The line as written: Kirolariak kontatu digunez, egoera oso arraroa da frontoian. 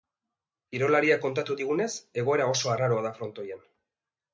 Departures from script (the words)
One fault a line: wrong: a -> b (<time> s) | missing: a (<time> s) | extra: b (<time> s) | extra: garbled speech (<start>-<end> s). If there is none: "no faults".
no faults